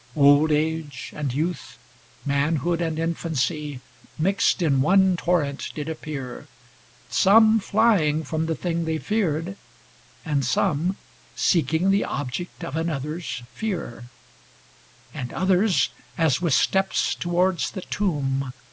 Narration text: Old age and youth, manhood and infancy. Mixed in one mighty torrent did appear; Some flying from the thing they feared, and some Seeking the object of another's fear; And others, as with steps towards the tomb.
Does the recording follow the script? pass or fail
fail